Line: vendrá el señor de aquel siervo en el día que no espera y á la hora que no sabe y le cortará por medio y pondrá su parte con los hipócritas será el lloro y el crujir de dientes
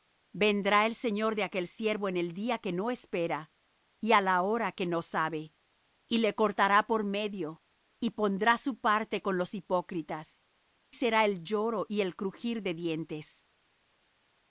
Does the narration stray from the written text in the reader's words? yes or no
no